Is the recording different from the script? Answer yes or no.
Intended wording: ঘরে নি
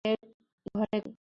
no